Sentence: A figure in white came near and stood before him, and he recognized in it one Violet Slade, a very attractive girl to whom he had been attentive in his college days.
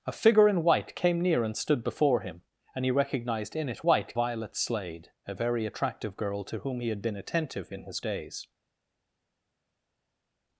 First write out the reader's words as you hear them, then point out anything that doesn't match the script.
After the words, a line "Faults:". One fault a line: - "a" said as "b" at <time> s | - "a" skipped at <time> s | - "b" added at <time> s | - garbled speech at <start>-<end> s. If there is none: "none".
A figure in white came near and stood before him, and he recognized in it white Violet Slade, a very attractive girl to whom he had been attentive in his days.
Faults:
- "one" said as "white" at 3.8 s
- "college" skipped at 8.0 s